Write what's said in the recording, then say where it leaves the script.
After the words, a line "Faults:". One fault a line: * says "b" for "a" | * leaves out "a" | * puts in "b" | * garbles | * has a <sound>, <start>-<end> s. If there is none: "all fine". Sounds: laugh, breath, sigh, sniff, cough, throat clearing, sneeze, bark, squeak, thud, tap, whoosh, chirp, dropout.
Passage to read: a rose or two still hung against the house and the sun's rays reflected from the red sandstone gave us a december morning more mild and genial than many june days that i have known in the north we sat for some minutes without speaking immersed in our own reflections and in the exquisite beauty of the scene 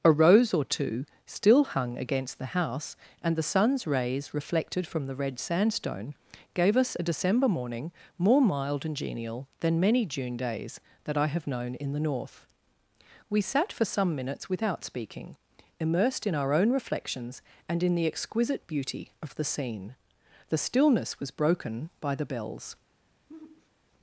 a rose or two still hung against the house and the sun's rays reflected from the red sandstone gave us a december morning more mild and genial than many june days that i have known in the north we sat for some minutes without speaking immersed in our own reflections and in the exquisite beauty of the scene the stillness was broken by the bells
Faults:
* puts in "the stillness was broken by the bells"
* has a sigh, 23.3-23.7 s